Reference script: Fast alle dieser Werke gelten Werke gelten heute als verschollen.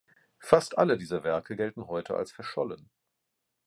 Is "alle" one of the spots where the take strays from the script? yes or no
no